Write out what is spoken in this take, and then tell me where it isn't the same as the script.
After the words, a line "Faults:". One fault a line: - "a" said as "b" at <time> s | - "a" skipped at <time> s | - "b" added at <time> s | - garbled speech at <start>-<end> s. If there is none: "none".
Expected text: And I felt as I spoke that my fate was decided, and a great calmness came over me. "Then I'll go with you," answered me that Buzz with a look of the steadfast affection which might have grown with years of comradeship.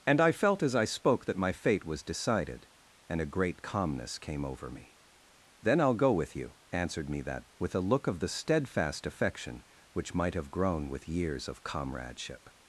And I felt as I spoke that my fate was decided, and a great calmness came over me. "Then I'll go with you," answered me that With a look of the steadfast affection which might have grown with years of comradeship.
Faults:
- "Buzz" skipped at 7.5 s